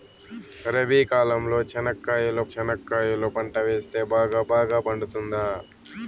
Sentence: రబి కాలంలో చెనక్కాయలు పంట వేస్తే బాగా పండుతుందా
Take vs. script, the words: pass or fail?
fail